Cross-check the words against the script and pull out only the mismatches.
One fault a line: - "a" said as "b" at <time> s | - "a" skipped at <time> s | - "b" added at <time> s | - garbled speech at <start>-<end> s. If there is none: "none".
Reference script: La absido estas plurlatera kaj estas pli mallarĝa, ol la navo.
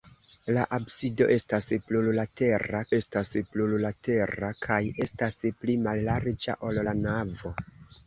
- "estas plurlatera" added at 3.0 s